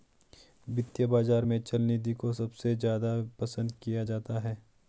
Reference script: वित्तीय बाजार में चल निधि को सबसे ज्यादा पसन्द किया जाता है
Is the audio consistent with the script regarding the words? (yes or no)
yes